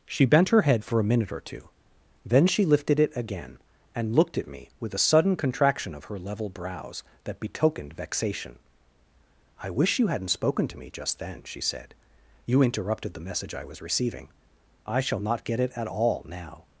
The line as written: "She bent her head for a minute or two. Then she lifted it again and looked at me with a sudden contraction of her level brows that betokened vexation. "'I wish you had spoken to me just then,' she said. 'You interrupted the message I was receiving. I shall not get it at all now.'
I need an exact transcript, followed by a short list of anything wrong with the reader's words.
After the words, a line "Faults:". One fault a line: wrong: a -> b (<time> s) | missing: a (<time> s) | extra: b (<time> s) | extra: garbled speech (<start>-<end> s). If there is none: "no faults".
"She bent her head for a minute or two. Then she lifted it again and looked at me with a sudden contraction of her level brows that betokened vexation. "'I wish you hadn't spoken to me just then,' she said. 'You interrupted the message I was receiving. I shall not get it at all now.'
Faults:
wrong: had -> hadn't (10.1 s)